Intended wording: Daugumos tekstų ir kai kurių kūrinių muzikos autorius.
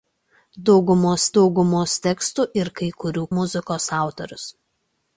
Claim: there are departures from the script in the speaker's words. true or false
true